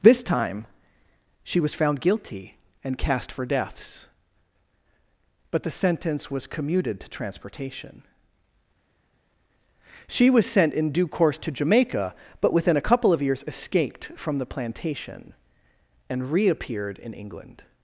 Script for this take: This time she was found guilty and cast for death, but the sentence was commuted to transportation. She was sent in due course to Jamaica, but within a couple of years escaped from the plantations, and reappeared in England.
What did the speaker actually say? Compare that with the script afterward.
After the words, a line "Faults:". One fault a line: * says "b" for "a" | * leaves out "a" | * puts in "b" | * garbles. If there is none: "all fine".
This time she was found guilty and cast for deaths, but the sentence was commuted to transportation. She was sent in due course to Jamaica, but within a couple of years escaped from the plantation, and reappeared in England.
Faults:
* says "deaths" for "death"
* says "plantation" for "plantations"